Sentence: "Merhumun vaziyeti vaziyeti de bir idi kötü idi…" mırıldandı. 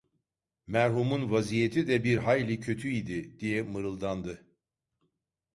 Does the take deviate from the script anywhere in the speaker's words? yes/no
yes